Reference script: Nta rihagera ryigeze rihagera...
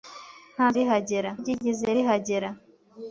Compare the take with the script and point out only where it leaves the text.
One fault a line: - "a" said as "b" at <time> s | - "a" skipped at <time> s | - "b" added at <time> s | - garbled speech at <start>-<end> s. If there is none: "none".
none